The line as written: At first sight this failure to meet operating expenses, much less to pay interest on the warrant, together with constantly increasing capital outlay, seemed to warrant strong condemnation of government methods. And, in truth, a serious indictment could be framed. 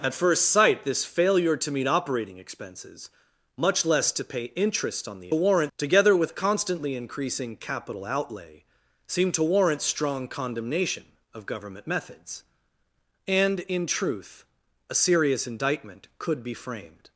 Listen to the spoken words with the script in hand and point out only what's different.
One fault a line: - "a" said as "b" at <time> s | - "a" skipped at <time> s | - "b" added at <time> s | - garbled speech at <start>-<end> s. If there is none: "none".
none